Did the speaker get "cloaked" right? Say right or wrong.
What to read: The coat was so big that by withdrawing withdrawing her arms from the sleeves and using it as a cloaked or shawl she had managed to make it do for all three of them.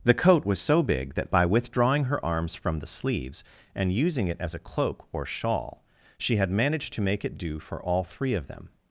wrong